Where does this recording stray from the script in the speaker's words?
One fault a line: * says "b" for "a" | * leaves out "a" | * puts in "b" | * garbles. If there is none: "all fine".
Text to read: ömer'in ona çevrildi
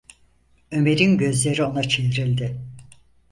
* puts in "gözleri"